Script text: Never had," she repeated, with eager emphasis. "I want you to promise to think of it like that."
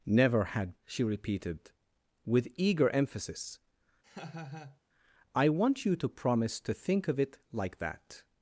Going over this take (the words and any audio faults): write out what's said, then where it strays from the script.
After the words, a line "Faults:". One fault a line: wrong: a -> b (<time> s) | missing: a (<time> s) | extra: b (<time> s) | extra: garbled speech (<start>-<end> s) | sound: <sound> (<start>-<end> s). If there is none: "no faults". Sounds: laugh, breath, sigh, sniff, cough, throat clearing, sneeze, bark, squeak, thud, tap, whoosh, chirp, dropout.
Never had," she repeated, with eager emphasis. "I want you to promise to think of it like that."
Faults:
sound: laugh (4.0-4.8 s)